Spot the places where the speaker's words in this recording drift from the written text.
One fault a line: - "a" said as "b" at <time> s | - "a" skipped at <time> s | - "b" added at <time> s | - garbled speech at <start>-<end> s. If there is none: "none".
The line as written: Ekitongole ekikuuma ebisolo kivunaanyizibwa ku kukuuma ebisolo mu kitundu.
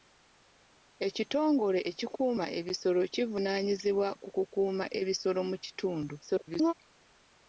- garbled speech at 6.2-6.7 s